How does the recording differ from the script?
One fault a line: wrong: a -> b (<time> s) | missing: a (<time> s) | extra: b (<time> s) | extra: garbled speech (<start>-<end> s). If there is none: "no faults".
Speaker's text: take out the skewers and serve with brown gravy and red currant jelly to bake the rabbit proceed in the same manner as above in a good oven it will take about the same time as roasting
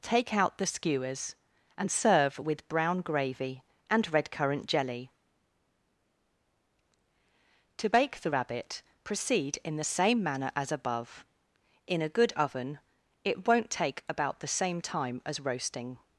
wrong: will -> won't (13.5 s)